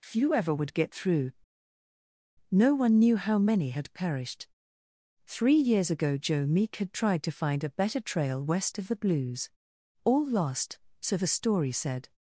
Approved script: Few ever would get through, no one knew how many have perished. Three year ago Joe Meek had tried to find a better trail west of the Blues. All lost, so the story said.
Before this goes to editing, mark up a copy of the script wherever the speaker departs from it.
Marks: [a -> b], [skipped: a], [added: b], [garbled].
Few ever would get through, no one knew how many [have -> had] perished. Three [year -> years] ago Joe Meek had tried to find a better trail west of the Blues. All lost, so the story said.